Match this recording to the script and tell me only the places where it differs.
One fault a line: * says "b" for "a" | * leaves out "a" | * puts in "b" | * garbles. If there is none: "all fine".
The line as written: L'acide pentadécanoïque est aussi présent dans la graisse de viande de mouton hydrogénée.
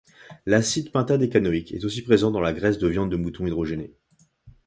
all fine